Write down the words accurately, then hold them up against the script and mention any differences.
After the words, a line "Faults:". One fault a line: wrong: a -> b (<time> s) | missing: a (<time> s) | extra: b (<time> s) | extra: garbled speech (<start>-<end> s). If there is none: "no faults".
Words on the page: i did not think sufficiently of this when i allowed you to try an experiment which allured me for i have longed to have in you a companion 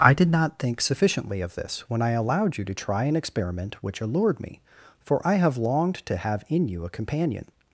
i did not think sufficiently of this when i allowed you to try an experiment which allured me for i have longed to have in you a companion
Faults:
no faults